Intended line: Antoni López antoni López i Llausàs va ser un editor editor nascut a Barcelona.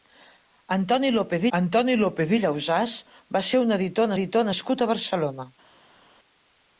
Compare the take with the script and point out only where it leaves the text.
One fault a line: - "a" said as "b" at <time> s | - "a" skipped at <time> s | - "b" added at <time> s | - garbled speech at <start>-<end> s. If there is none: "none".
none